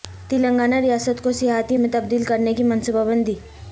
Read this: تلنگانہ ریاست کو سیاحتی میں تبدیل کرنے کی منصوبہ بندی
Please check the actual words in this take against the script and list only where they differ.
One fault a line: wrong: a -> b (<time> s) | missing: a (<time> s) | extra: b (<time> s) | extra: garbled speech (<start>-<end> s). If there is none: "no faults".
no faults